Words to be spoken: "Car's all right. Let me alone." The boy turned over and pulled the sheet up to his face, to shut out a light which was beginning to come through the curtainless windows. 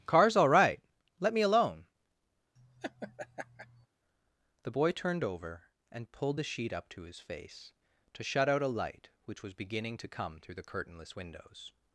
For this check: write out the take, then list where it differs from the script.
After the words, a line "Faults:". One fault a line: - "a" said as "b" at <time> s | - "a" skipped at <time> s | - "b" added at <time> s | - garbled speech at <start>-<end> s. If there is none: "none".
"Car's all right. Let me alone." The boy turned over and pulled the sheet up to his face, to shut out a light which was beginning to come through the curtainless windows.
Faults:
none